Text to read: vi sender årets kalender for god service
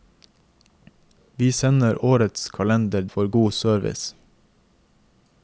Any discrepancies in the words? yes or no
no